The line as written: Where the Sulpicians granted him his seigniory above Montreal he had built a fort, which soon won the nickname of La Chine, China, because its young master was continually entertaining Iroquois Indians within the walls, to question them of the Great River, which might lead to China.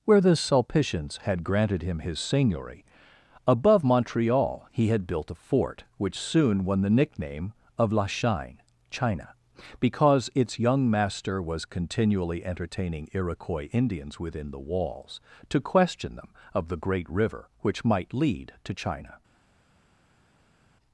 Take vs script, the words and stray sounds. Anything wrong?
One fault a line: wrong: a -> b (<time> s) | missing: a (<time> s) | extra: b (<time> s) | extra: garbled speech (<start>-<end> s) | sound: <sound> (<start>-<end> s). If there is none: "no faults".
extra: had (1.2 s)